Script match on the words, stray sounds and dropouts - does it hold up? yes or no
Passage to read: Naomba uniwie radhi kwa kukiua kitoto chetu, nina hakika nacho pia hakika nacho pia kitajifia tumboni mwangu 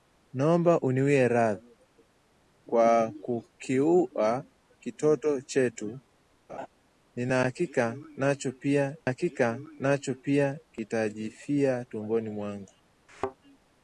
no